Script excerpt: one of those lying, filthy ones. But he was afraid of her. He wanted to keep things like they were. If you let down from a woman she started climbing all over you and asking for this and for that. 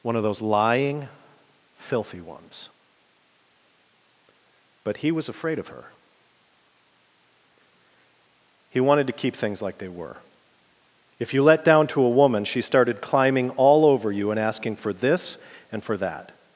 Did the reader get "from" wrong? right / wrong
wrong